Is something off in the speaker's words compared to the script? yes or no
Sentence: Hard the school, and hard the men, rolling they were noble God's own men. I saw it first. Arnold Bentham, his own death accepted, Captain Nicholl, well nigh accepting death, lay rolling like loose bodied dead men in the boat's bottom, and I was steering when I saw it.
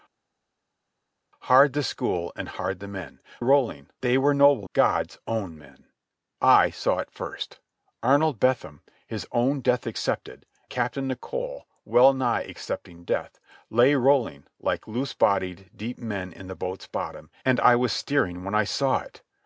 no